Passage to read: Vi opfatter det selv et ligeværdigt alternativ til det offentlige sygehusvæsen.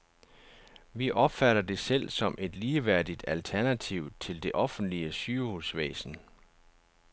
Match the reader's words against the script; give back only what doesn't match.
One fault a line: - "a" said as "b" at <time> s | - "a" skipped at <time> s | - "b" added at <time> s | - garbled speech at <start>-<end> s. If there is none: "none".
- "som" added at 2.1 s